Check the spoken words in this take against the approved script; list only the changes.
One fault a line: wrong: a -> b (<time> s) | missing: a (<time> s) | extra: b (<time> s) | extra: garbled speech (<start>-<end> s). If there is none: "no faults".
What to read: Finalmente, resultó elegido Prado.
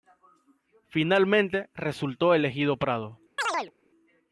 no faults